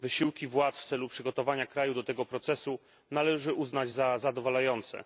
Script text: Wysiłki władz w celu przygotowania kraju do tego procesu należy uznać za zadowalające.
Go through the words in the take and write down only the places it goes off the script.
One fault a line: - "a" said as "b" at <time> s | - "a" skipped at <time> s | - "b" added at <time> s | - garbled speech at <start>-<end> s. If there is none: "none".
none